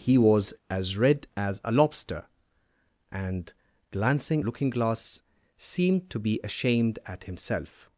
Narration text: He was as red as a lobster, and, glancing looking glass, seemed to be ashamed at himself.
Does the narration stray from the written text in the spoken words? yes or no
no